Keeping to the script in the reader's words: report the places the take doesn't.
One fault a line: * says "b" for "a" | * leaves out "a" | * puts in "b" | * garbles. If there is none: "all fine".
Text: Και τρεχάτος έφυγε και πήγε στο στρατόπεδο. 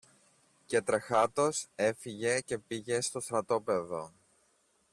all fine